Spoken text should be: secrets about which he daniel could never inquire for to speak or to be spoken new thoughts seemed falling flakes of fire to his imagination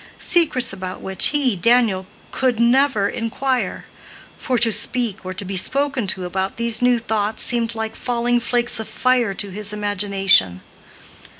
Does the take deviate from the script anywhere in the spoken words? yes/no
yes